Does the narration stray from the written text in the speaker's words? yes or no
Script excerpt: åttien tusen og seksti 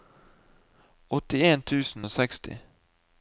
no